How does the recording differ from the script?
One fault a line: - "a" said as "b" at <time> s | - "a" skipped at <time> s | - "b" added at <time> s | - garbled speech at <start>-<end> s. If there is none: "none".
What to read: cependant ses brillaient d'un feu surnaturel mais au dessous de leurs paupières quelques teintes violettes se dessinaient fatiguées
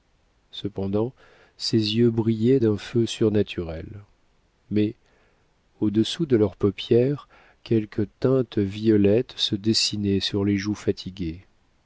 - "yeux" added at 1.9 s
- "sur les joues" added at 10.2 s